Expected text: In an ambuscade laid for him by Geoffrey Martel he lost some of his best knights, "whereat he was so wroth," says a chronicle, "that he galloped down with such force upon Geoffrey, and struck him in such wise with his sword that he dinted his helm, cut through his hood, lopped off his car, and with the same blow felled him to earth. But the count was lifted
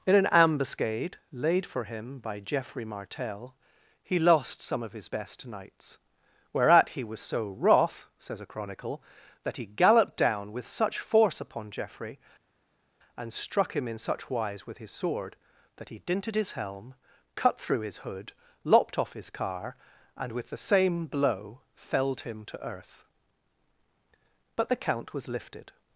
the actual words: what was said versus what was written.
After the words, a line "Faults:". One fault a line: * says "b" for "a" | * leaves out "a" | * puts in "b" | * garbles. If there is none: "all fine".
In an ambuscade laid for him by Geoffrey Martel he lost some of his best knights, "whereat he was so wroth," says a chronicle, "that he galloped down with such force upon Geoffrey, and struck him in such wise with his sword that he dinted his helm, cut through his hood, lopped off his car, and with the same blow felled him to earth. But the count was lifted
Faults:
all fine